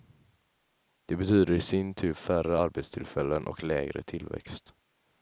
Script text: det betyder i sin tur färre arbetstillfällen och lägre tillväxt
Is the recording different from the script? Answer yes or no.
no